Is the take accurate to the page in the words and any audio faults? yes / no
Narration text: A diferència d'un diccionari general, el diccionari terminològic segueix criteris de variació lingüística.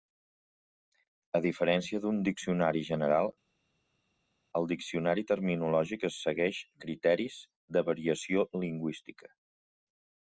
yes